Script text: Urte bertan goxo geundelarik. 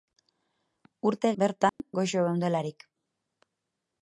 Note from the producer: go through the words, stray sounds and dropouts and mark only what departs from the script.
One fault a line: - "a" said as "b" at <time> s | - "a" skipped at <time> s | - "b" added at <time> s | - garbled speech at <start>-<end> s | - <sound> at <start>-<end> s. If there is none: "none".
- dropout at 1.7-1.8 s